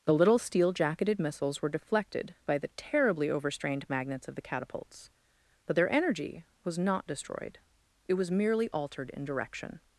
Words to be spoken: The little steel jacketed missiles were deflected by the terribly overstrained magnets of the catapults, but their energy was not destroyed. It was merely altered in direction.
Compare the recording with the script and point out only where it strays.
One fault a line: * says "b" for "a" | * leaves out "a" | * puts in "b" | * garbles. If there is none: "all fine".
all fine